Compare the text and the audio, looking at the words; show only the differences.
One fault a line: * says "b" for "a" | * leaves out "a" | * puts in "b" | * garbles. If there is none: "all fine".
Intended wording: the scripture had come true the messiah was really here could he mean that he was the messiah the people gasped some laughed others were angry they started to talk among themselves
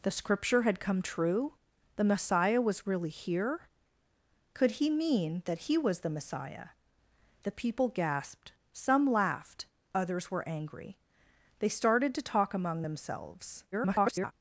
* garbles